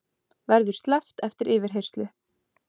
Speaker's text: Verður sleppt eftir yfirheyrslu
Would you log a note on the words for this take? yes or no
no